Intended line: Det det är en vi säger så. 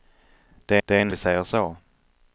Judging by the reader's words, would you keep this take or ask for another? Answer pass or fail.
pass